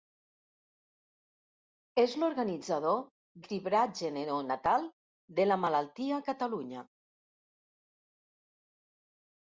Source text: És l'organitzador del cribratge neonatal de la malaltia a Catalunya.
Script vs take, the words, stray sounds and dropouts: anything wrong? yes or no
yes